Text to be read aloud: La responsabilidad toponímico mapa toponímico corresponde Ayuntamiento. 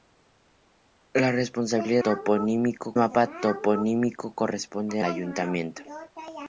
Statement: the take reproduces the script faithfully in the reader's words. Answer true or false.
true